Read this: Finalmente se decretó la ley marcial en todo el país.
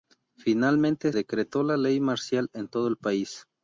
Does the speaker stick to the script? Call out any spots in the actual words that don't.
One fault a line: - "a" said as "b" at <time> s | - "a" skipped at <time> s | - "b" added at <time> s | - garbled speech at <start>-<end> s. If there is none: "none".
- "se" skipped at 1.1 s